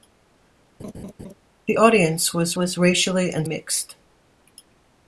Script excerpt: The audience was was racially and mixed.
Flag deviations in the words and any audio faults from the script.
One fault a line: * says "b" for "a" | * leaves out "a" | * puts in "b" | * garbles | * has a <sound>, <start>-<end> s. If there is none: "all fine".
* has a laugh, 0.8-1.3 s